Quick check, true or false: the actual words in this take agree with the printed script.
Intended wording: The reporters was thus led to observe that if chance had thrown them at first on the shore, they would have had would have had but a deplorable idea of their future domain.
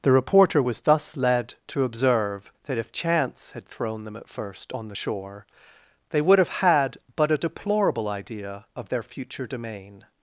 false